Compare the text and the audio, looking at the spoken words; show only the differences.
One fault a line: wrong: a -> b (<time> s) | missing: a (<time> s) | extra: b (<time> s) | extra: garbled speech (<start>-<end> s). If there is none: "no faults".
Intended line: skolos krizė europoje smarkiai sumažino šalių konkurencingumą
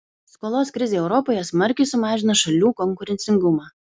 no faults